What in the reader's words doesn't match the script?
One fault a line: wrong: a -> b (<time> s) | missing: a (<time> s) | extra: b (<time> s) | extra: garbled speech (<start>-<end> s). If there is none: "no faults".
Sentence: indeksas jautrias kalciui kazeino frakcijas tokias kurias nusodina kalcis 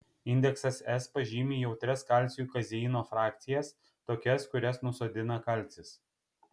extra: s pažymi (0.9 s)